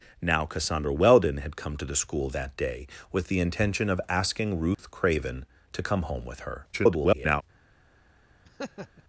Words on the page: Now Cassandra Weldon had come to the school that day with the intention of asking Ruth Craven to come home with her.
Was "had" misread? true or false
false